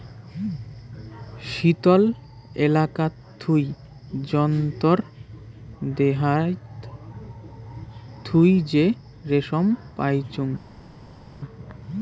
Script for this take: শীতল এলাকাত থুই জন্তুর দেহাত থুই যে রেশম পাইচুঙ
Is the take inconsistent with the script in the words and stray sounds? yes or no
no